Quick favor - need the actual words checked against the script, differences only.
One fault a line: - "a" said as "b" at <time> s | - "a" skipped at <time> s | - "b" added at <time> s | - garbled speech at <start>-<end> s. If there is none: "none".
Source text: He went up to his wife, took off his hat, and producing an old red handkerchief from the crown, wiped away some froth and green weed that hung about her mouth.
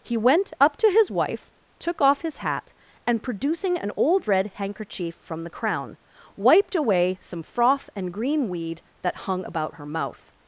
none